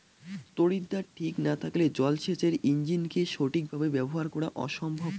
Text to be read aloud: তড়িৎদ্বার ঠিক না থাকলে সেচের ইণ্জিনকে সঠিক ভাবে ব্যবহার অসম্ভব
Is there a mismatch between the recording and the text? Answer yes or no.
yes